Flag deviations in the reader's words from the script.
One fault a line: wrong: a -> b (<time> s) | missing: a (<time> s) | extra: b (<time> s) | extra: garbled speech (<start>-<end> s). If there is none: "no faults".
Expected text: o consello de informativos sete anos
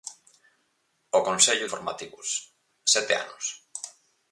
missing: de (1.7 s)